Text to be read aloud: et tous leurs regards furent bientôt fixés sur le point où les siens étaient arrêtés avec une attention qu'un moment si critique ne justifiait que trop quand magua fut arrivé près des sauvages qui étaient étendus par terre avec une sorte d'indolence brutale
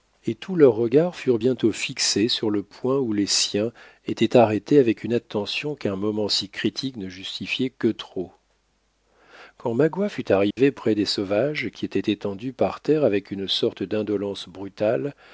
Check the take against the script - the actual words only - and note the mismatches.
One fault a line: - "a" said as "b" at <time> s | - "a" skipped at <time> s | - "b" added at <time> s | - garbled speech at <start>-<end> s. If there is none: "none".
none